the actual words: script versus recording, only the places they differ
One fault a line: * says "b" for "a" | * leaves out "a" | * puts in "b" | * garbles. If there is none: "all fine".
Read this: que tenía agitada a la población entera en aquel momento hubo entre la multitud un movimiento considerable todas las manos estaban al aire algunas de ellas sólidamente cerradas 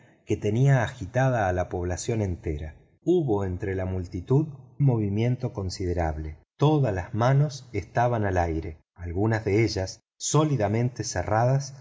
* leaves out "en aquel momento"
* leaves out "un"